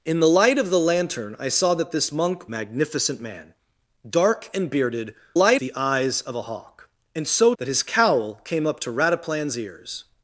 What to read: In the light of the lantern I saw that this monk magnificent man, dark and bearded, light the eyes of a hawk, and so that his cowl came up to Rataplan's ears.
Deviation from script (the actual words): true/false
false